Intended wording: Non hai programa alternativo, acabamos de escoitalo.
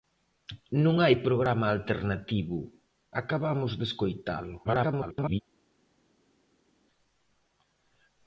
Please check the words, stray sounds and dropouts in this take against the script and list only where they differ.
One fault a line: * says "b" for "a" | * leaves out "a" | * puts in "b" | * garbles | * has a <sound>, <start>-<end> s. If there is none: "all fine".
* garbles